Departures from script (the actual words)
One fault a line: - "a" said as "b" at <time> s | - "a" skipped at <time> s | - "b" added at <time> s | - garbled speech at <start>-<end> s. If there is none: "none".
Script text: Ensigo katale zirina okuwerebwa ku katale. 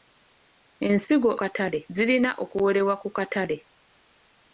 none